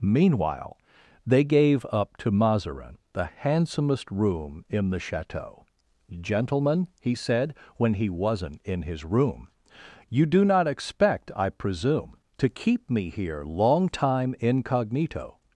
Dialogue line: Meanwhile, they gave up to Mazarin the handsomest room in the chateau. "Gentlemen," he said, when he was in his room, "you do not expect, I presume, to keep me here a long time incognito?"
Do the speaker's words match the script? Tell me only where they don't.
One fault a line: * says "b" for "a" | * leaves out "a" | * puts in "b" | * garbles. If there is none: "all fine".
* says "wasn't" for "was"
* leaves out "a"